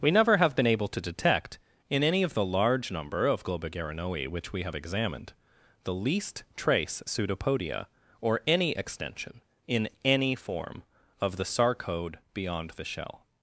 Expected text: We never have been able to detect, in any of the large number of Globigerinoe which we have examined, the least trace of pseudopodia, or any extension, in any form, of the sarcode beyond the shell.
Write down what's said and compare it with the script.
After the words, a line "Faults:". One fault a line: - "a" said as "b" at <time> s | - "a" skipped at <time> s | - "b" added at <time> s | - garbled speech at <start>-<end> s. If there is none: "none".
We never have been able to detect, in any of the large number of Globigerinoe which we have examined, the least trace pseudopodia, or any extension, in any form, of the sarcode beyond the shell.
Faults:
- "of" skipped at 7.0 s